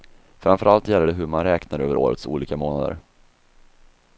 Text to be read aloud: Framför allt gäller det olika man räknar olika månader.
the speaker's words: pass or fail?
fail